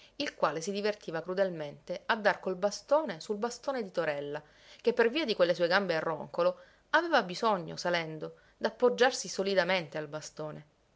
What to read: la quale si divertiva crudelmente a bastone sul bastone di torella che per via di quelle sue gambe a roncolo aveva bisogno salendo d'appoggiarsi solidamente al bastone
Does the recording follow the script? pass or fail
fail